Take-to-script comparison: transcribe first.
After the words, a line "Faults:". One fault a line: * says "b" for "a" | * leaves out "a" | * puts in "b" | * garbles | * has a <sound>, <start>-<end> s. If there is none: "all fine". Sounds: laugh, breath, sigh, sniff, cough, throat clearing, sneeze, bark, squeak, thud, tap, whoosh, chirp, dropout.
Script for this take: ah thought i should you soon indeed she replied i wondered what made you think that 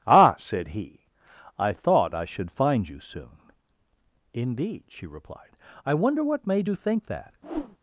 ah said he i thought i should find you soon indeed she replied i wonder what made you think that
Faults:
* puts in "said he i"
* puts in "find"
* says "wonder" for "wondered"
* has a whoosh, 7.4-7.8 s